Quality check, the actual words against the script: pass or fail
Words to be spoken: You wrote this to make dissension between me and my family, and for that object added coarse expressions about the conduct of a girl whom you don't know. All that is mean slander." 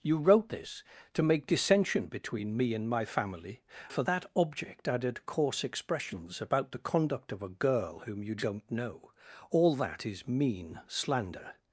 fail